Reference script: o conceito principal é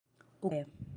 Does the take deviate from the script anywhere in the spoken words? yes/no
yes